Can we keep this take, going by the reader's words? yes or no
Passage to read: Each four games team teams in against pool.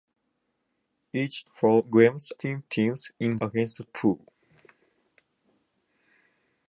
yes